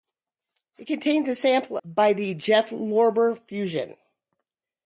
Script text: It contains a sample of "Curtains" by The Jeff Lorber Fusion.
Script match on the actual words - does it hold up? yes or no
no